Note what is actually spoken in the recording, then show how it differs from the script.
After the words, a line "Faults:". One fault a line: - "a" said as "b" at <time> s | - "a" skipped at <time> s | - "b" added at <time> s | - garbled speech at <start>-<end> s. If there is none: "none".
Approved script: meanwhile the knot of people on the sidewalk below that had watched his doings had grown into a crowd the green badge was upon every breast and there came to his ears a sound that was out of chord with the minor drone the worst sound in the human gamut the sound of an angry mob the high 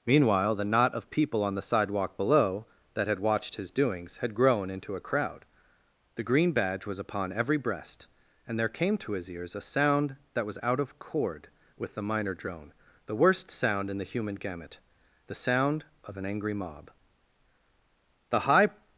meanwhile the knot of people on the sidewalk below that had watched his doings had grown into a crowd the green badge was upon every breast and there came to his ears a sound that was out of chord with the minor drone the worst sound in the human gamut the sound of an angry mob the high
Faults:
none